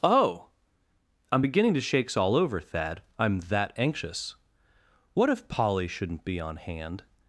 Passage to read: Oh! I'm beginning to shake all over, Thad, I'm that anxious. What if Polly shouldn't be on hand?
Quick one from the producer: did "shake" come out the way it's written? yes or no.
no